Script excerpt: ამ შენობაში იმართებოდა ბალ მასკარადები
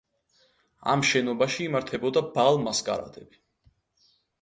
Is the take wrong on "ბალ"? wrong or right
right